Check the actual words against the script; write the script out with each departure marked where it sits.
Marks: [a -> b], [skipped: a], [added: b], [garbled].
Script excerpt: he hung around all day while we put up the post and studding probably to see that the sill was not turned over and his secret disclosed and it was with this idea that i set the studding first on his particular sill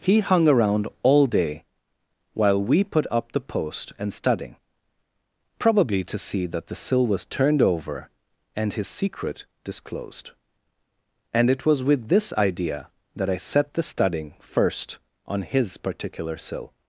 he hung around all day while we put up the post and studding probably to see that the sill was [skipped: not] turned over and his secret disclosed and it was with this idea that i set the studding first on his particular sill